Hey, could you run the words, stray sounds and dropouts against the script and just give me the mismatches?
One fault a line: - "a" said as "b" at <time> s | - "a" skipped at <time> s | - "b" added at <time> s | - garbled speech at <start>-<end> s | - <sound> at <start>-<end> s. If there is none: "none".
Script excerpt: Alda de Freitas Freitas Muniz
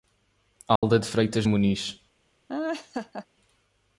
- dropout at 0.8-0.8 s
- "Freitas" skipped at 1.5 s
- laugh at 2.5-3.3 s